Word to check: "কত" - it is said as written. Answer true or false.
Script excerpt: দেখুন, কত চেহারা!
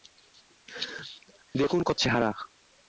true